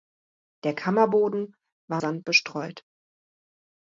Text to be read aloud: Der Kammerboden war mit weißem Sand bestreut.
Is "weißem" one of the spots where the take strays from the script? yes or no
yes